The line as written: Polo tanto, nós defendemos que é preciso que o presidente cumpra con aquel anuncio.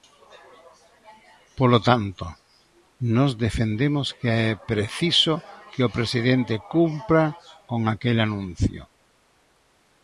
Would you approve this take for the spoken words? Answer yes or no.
yes